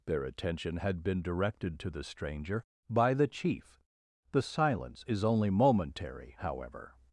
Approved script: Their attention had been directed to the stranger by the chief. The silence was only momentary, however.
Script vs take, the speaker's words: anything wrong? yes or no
yes